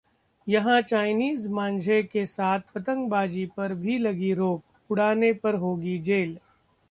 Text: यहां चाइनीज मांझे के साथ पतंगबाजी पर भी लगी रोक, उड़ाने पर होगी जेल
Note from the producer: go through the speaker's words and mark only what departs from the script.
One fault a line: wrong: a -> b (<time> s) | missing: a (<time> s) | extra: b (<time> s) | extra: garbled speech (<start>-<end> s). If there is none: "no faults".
no faults